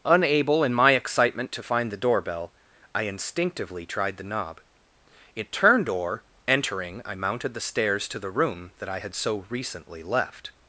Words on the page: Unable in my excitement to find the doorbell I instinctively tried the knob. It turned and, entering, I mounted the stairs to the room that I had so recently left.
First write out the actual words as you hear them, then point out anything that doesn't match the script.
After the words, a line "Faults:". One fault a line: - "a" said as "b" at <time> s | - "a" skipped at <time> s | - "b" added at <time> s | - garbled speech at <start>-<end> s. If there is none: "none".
Unable in my excitement to find the doorbell I instinctively tried the knob. It turned or, entering, I mounted the stairs to the room that I had so recently left.
Faults:
- "and" said as "or" at 5.9 s